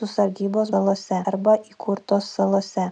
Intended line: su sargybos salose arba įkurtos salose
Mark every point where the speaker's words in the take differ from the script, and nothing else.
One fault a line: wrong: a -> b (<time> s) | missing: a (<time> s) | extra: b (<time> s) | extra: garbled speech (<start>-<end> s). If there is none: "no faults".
no faults